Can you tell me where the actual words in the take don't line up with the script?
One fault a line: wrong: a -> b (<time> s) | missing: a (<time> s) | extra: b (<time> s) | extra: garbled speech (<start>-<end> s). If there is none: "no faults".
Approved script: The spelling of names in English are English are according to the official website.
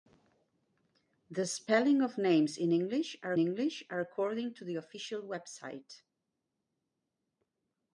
no faults